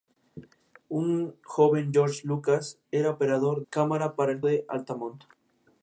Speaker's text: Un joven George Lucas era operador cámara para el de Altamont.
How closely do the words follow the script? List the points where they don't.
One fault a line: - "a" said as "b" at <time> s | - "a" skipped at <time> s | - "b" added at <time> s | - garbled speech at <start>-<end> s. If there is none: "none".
none